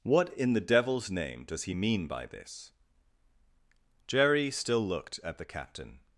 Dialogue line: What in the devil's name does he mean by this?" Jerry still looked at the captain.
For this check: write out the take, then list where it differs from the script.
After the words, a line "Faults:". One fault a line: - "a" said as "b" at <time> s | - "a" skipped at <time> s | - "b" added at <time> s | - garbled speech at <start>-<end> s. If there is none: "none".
What in the devil's name does he mean by this?" Jerry still looked at the captain.
Faults:
none